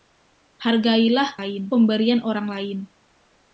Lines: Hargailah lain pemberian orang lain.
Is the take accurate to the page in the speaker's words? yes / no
yes